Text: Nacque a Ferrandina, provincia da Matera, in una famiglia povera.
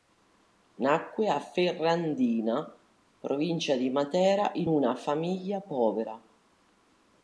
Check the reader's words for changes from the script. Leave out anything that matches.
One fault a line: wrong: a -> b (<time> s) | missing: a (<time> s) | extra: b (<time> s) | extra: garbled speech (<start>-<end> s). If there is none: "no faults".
wrong: da -> di (3.8 s)